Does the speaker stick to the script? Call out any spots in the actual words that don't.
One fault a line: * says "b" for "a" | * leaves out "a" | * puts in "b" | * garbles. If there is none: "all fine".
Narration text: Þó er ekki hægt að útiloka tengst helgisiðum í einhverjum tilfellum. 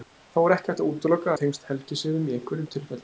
all fine